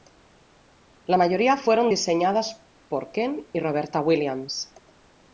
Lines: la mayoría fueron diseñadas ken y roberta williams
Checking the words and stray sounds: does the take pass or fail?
fail